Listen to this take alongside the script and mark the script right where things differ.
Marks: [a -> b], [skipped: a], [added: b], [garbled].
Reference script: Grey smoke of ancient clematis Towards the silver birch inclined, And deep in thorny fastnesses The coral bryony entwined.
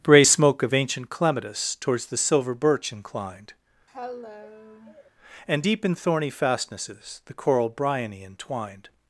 [Grey -> Bray] smoke of ancient clematis Towards the silver birch inclined, And deep in thorny fastnesses The coral bryony entwined.